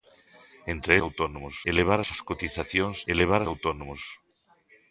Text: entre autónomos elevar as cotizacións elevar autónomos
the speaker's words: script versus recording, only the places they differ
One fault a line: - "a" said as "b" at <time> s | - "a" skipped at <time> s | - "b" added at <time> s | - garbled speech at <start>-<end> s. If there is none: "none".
none